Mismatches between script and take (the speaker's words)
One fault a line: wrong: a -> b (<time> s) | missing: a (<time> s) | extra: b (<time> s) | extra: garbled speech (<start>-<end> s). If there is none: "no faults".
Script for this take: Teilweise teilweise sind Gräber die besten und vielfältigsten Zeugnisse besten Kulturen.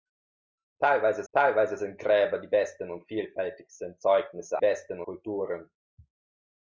no faults